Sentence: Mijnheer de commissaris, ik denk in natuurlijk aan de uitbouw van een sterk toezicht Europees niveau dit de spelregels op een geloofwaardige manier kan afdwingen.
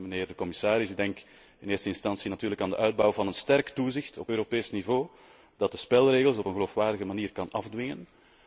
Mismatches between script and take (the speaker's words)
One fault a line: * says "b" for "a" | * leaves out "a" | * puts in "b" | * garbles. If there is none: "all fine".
* puts in "eerste instantie"
* puts in "op"
* says "dat" for "dit"